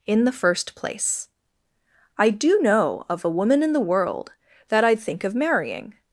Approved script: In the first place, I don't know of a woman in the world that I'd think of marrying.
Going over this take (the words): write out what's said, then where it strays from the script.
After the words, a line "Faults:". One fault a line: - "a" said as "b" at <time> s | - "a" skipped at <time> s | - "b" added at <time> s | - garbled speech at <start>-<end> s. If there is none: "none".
In the first place, I do know of a woman in the world that I'd think of marrying.
Faults:
- "don't" said as "do" at 2.3 s